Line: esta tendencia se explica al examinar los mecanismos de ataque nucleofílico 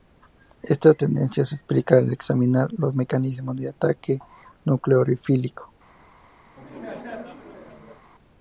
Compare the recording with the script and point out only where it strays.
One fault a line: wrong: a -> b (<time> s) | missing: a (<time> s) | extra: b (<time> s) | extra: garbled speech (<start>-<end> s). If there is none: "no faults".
no faults